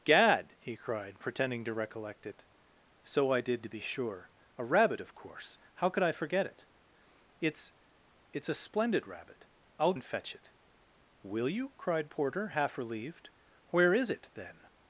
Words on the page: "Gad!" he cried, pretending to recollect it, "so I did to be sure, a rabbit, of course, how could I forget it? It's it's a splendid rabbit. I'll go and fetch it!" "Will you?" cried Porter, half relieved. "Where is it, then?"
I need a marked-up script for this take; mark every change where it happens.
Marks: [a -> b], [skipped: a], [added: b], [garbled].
"Gad!" he cried, pretending to recollect it, "so I did to be sure, a rabbit, of course, how could I forget it? It's it's a splendid rabbit. I'll [skipped: go] and fetch it!" "Will you?" cried Porter, half relieved. "Where is it, then?"